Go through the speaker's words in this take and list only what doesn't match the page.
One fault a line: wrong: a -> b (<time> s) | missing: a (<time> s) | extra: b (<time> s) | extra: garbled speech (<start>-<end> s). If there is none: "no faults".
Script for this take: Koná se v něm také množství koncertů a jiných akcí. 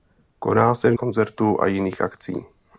missing: něm také množství (0.9 s)